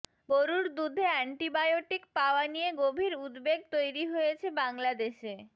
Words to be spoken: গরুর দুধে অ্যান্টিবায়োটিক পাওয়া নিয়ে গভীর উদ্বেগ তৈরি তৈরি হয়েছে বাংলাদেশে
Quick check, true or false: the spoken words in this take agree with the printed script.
false